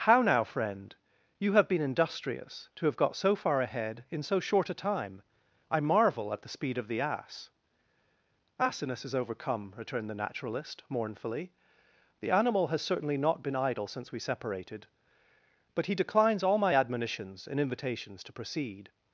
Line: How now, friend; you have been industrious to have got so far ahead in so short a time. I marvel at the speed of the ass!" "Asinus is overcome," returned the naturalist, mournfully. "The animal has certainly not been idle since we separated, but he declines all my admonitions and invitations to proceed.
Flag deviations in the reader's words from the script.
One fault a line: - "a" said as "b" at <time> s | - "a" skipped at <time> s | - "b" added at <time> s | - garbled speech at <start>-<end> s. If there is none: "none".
none